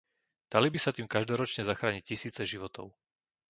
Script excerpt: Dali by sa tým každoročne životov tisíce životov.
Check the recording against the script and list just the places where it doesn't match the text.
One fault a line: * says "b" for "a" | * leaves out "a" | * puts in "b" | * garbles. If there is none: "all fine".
* says "zachrániť" for "životov"